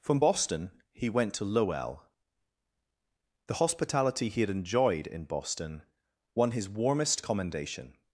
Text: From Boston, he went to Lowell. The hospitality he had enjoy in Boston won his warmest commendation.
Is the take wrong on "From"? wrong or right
right